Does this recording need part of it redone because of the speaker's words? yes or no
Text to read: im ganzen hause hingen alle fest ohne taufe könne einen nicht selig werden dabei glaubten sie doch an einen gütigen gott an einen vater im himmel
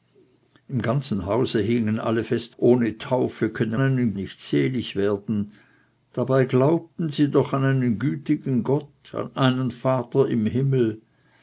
no